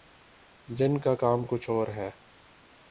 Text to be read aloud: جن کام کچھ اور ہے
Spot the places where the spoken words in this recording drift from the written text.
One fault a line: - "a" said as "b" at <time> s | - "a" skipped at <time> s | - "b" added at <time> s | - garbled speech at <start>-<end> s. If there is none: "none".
- "کا" added at 1.0 s